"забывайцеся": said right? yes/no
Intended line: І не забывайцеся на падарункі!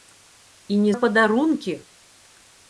no